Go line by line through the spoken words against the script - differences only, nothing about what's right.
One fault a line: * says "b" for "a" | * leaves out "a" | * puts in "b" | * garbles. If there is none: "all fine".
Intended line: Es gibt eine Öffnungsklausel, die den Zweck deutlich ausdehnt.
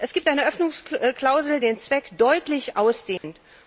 * leaves out "die"